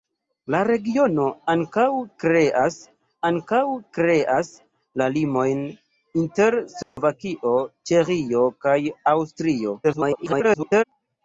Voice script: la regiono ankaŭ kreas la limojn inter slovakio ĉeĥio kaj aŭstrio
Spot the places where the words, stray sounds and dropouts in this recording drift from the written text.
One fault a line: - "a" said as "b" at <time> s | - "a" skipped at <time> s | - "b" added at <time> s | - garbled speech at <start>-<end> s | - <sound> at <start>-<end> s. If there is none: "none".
- "ankaŭ kreas" added at 3.3 s
- dropout at 6.8-7.0 s
- garbled speech at 9.8-10.8 s